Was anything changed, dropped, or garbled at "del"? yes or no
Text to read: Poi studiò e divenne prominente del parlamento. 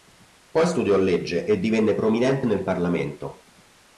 yes